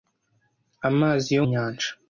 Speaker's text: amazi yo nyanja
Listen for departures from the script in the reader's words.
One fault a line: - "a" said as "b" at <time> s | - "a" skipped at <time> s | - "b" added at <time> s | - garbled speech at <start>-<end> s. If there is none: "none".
none